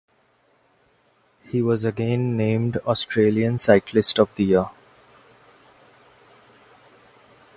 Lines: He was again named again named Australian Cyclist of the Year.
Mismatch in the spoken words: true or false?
true